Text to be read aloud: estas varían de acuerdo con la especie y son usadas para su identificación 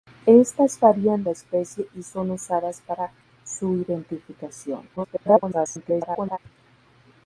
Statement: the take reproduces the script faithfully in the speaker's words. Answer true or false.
false